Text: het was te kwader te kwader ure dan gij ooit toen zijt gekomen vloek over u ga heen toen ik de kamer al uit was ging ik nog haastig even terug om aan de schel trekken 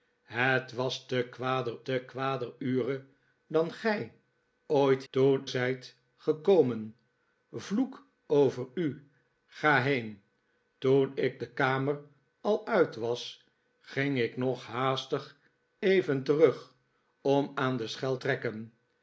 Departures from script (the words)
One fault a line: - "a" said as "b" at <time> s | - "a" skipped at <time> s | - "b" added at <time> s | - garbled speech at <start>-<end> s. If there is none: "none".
none